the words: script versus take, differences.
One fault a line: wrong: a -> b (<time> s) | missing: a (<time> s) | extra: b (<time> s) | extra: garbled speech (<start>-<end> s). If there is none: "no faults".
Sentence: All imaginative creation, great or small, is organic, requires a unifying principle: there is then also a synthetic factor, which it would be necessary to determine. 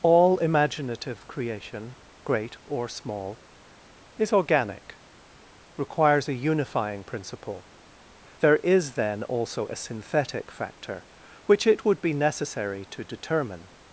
no faults